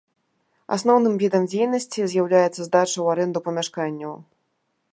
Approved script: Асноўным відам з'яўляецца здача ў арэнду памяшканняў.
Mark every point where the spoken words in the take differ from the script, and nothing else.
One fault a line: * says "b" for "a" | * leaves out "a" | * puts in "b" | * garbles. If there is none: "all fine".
* puts in "дзейнасці"